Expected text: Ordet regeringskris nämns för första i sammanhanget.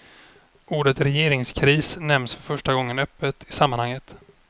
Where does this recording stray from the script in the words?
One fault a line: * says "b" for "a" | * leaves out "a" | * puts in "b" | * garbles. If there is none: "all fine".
* puts in "gången öppet"